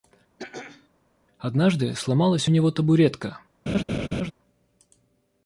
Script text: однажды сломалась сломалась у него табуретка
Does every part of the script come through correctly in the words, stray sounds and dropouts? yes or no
no